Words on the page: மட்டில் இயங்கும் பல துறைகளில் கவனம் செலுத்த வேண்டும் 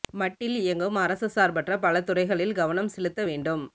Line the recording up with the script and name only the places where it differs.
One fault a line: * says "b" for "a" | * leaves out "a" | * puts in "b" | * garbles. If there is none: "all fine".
* puts in "அரச சார்பற்ற"